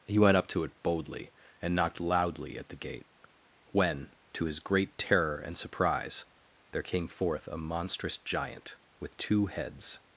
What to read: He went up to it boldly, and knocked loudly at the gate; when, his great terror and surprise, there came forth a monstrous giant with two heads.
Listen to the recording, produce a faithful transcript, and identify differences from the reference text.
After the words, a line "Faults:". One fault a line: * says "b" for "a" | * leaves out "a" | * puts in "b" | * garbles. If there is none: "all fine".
He went up to it boldly, and knocked loudly at the gate; when, to his great terror and surprise, there came forth a monstrous giant with two heads.
Faults:
* puts in "to"